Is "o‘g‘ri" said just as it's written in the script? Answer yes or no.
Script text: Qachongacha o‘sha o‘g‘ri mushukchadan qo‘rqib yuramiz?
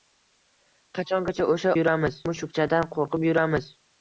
no